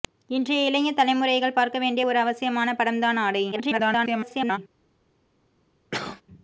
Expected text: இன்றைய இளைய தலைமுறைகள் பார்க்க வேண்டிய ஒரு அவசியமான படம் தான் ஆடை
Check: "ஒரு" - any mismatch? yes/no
no